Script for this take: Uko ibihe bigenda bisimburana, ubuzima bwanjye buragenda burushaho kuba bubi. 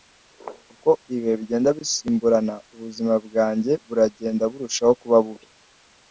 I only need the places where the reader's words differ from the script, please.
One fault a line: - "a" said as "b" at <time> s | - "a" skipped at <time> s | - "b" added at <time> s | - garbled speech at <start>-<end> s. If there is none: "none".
none